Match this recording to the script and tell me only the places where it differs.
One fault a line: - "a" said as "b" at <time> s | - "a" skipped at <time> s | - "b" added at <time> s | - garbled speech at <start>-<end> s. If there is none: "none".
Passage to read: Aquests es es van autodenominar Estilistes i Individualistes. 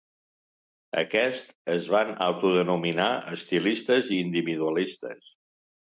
- "es" skipped at 1.9 s